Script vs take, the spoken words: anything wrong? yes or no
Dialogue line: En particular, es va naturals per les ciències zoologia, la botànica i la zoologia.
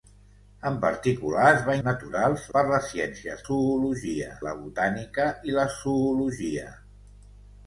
no